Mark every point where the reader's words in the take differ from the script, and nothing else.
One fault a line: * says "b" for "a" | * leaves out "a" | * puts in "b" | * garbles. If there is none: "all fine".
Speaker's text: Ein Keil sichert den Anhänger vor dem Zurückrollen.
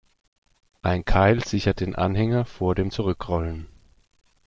all fine